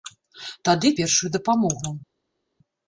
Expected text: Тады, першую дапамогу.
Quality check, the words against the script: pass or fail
pass